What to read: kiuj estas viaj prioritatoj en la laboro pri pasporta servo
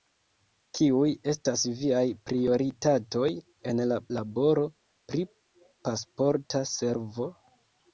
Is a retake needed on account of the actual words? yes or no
no